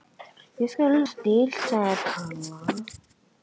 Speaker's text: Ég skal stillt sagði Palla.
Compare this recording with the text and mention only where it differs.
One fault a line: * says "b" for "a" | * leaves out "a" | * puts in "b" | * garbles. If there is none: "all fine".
all fine